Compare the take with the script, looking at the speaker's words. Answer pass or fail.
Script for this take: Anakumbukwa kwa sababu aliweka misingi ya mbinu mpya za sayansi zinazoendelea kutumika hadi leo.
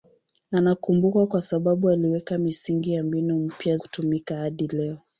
fail